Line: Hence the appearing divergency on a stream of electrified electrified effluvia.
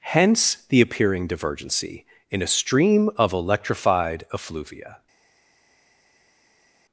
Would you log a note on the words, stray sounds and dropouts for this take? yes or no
yes